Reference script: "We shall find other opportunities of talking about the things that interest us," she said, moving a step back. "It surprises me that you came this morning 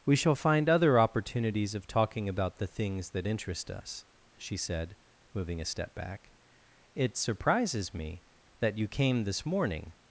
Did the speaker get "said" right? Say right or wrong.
right